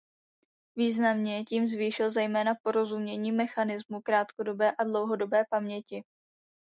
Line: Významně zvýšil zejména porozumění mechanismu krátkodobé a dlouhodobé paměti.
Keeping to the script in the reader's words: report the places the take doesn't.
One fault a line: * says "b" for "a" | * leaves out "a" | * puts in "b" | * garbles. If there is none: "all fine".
* puts in "tím"